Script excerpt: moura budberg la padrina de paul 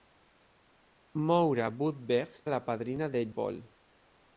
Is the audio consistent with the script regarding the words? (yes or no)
yes